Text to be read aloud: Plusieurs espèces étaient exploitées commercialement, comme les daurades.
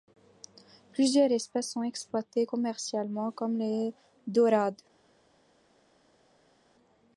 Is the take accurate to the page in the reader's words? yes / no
no